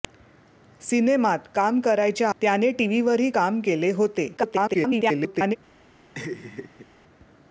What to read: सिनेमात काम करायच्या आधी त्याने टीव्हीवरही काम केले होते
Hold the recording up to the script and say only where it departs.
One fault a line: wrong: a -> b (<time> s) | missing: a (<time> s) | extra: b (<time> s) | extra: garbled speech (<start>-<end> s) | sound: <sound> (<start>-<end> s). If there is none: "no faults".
missing: आधी (2.3 s)
extra: garbled speech (4.4-5.6 s)
sound: laugh (6.1-6.9 s)